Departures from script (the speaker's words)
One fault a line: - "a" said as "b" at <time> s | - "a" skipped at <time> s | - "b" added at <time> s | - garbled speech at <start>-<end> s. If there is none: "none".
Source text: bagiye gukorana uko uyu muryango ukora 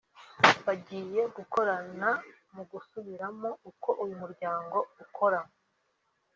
- "mu gusubiramo" added at 2.5 s